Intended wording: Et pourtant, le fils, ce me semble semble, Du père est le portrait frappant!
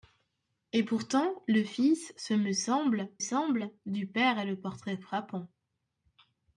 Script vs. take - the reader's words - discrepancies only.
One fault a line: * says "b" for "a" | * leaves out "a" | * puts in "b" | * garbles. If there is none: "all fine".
all fine